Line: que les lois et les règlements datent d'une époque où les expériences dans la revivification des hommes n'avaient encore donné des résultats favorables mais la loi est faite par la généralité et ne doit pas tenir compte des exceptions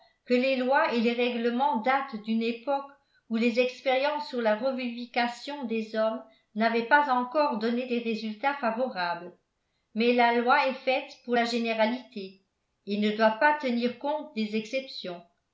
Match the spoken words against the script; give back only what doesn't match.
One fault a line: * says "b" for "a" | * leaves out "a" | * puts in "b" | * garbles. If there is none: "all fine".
* says "sur" for "dans"
* puts in "pas"
* says "pour" for "par"